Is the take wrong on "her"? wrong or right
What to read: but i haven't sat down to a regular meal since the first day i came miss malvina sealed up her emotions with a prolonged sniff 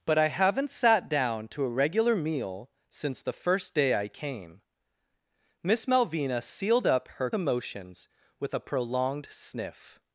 right